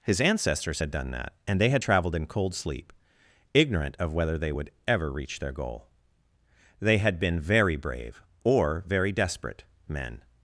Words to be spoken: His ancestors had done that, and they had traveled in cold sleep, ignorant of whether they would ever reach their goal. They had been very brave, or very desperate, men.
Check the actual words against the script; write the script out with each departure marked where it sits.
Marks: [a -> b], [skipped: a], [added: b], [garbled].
His ancestors had done that, and they had traveled in cold sleep, ignorant of whether they would ever reach their goal. They had been very brave, or very desperate, men.